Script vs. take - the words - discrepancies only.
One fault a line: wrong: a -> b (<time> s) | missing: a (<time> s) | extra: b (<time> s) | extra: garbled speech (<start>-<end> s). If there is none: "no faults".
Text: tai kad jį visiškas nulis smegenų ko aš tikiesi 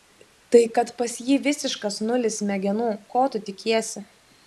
extra: pas (1.0 s)
wrong: aš -> tu (3.4 s)